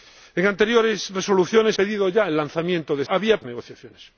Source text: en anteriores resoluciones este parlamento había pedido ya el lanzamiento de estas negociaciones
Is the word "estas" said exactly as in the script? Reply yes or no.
no